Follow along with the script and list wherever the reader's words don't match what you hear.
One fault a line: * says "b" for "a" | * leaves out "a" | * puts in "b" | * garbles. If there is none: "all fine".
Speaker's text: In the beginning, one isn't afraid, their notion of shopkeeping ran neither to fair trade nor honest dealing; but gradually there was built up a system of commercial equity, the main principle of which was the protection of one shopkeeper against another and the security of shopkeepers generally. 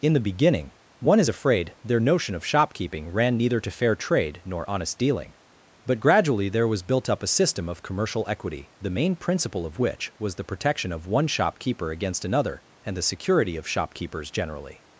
* says "is" for "isn't"